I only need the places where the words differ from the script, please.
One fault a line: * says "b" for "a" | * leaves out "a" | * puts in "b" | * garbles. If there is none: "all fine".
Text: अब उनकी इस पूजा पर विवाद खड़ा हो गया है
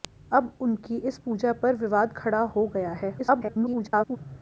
* garbles